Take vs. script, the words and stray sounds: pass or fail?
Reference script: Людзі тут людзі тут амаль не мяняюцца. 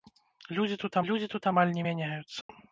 fail